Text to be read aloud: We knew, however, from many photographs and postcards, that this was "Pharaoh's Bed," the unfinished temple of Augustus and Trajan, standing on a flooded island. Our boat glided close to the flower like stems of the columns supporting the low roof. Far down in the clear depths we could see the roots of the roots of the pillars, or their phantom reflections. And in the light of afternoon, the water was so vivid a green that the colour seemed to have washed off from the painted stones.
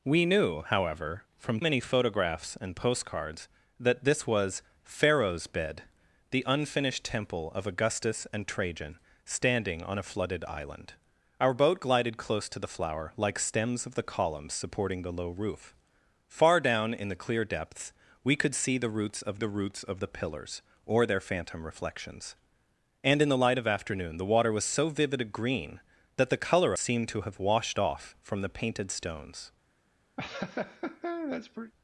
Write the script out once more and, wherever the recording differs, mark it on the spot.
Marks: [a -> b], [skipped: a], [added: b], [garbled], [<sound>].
We knew, however, from many photographs and postcards, that this was "Pharaoh's Bed," the unfinished temple of Augustus and Trajan, standing on a flooded island. Our boat glided close to the flower like stems of the columns supporting the low roof. Far down in the clear depths we could see the roots of the roots of the pillars, or their phantom reflections. And in the light of afternoon, the water was so vivid a green that the colour seemed to have washed off from the painted stones. [laugh]